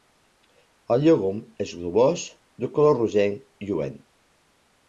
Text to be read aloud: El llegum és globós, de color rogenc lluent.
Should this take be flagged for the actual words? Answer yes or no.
no